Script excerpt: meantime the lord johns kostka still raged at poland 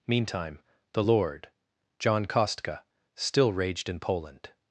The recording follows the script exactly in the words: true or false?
false